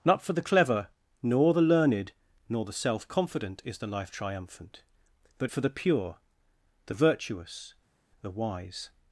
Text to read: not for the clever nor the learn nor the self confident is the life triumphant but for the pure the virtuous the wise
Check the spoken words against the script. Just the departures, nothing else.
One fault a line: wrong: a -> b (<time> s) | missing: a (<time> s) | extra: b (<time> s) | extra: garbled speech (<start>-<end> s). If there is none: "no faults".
wrong: learn -> learned (1.6 s)